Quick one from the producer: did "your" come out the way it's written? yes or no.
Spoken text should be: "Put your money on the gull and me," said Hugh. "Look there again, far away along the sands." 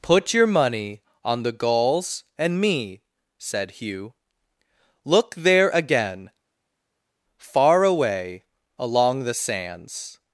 yes